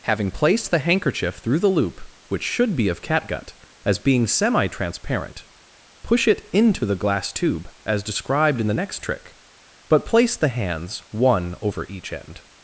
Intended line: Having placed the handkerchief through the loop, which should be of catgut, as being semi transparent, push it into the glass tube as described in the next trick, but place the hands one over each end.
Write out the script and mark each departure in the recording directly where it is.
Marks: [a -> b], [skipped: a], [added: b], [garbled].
Having placed the handkerchief through the loop, which should be of catgut, as being semi transparent, push it into the glass tube as described in the next trick, but place the hands one over each end.